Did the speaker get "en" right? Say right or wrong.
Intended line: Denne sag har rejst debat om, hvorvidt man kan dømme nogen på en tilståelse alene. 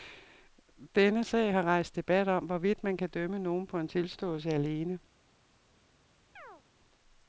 right